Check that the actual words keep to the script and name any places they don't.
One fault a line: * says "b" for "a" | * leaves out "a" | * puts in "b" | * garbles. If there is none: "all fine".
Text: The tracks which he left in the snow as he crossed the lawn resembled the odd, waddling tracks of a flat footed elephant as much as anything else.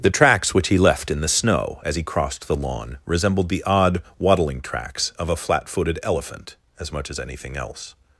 all fine